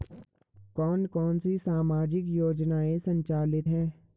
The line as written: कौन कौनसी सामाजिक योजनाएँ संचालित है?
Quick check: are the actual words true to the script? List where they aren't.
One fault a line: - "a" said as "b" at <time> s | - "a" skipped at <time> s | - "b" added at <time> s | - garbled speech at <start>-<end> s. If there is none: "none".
none